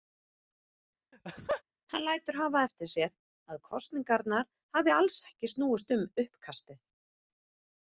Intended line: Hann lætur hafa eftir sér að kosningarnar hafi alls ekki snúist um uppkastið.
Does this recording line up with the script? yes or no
yes